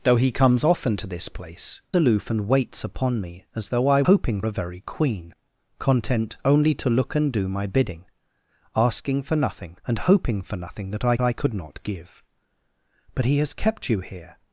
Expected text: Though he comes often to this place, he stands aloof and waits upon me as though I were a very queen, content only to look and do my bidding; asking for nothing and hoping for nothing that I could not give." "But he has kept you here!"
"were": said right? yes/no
no